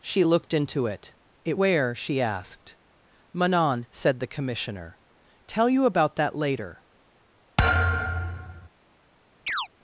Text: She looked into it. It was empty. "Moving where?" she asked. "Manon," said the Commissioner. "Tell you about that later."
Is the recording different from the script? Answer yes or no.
yes